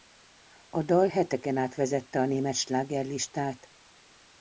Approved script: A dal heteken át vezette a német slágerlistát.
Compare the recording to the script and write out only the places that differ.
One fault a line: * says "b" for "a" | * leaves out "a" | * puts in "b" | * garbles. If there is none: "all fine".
all fine